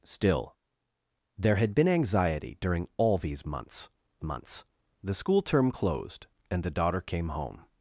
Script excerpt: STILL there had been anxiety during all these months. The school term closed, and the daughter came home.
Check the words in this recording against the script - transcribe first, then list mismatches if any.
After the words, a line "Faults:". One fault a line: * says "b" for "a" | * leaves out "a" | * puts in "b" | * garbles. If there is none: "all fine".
STILL there had been anxiety during all these months months. The school term closed, and the daughter came home.
Faults:
* puts in "months"